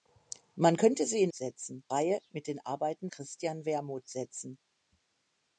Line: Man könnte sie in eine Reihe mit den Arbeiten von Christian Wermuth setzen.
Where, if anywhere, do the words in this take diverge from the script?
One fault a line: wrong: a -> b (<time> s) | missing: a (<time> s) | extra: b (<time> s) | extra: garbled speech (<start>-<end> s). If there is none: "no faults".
wrong: eine -> setzen (1.3 s)
missing: von (3.1 s)